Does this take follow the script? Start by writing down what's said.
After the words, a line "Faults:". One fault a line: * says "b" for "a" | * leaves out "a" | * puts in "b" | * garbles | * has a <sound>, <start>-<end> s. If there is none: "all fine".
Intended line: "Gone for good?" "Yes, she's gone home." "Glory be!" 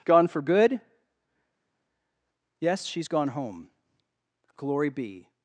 "Gone for good?" "Yes, she's gone home." "Glory be!"
Faults:
all fine